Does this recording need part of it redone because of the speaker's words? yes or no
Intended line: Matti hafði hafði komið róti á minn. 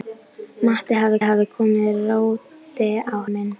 no